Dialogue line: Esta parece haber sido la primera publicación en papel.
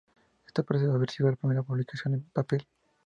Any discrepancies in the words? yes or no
no